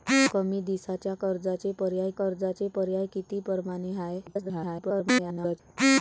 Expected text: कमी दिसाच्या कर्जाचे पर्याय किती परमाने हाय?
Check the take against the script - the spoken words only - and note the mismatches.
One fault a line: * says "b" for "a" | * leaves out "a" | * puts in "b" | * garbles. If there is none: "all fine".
* puts in "कर्जाचे पर्याय"
* garbles